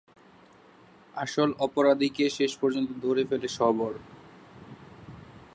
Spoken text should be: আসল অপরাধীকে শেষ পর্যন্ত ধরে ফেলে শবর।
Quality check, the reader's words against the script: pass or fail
pass